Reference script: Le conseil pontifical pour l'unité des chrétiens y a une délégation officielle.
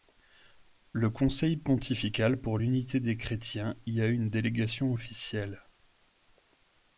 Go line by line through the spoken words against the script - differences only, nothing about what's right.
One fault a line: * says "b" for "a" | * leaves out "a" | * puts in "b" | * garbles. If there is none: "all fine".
all fine